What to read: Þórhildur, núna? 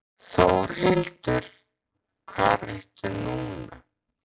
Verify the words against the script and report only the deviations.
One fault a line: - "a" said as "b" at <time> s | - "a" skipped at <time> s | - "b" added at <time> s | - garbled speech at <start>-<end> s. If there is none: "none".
- "hvar ertu" added at 2.3 s